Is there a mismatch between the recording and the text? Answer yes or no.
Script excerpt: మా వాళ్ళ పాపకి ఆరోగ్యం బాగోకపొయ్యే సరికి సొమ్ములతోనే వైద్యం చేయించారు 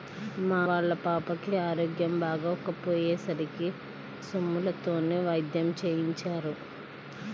no